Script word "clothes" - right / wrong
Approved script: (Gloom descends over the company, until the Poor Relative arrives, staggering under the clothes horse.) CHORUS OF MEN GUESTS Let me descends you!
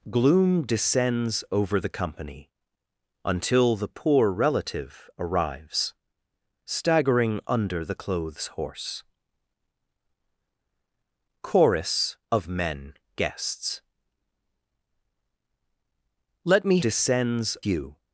right